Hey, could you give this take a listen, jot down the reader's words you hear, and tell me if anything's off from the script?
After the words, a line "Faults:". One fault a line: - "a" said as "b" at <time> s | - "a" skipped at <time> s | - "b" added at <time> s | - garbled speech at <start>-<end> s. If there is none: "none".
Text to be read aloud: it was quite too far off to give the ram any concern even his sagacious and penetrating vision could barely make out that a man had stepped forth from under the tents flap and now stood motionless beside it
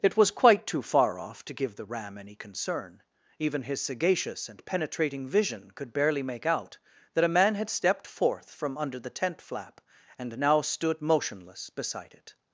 it was quite too far off to give the ram any concern even his sagacious and penetrating vision could barely make out that a man had stepped forth from under the tent flap and now stood motionless beside it
Faults:
- "tents" said as "tent" at 9.1 s